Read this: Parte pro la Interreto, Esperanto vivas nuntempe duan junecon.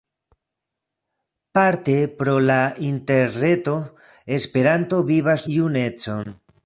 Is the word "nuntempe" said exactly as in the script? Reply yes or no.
no